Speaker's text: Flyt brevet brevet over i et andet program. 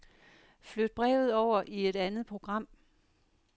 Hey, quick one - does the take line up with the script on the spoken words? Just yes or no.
no